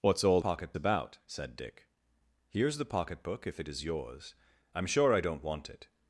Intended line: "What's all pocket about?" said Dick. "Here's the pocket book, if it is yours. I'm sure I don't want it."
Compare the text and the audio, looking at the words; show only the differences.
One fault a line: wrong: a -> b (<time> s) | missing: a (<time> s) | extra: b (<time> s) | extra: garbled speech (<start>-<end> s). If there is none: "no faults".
no faults